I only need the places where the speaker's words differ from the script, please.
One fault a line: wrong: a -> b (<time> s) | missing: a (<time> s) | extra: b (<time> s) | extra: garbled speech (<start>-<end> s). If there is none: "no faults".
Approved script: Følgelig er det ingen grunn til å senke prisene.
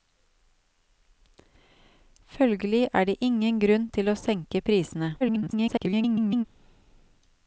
extra: garbled speech (5.2-6.4 s)